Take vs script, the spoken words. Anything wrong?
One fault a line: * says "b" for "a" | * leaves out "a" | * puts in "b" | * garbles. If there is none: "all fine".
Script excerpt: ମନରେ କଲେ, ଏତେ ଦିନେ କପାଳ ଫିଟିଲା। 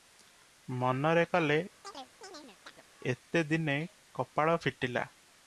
all fine